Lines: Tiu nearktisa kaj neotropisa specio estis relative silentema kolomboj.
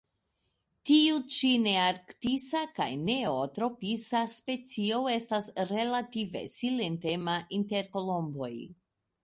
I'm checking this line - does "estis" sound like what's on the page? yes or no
no